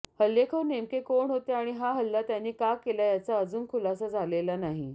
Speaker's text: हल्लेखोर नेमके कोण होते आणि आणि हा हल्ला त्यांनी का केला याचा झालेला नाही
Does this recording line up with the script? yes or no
no